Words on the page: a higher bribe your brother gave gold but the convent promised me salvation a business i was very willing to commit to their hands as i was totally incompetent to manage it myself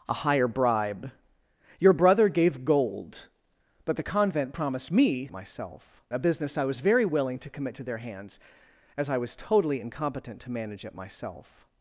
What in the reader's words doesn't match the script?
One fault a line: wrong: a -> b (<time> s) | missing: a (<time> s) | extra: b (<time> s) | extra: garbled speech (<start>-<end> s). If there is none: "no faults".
wrong: salvation -> myself (5.3 s)